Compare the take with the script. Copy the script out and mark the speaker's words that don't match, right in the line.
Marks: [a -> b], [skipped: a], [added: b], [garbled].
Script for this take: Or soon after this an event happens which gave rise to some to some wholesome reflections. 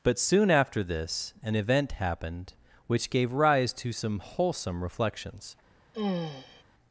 [Or -> But] soon after this an event [happens -> happened] which gave rise to some [skipped: to some] wholesome reflections.